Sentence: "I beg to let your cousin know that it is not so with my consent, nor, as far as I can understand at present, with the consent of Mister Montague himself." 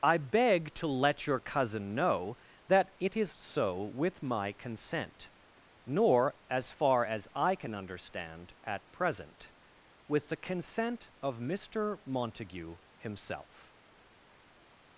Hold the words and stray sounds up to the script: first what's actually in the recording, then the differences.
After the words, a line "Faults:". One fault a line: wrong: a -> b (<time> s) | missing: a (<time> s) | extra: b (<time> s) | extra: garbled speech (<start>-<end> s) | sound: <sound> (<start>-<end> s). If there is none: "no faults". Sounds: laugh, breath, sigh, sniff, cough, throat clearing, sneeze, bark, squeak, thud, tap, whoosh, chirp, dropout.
"I beg to let your cousin know that it is so with my consent, nor, as far as I can understand at present, with the consent of Mister Montague himself."
Faults:
missing: not (3.4 s)